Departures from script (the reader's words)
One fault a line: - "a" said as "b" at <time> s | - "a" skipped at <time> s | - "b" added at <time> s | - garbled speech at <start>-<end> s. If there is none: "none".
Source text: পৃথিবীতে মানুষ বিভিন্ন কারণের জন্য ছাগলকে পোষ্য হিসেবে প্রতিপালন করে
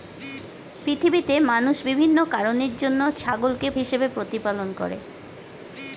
- "পোষ্য" skipped at 3.7 s